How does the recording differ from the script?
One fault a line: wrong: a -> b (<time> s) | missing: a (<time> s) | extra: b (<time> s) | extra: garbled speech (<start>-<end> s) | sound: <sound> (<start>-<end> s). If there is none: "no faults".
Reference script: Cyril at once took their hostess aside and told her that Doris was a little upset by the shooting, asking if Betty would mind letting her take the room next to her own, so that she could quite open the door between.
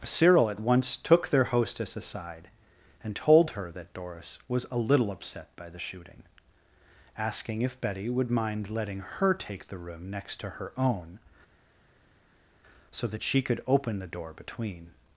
missing: quite (13.6 s)